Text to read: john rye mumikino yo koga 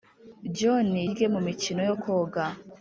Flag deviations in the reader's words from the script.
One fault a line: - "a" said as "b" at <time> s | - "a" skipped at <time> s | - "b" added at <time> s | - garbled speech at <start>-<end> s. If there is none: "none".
none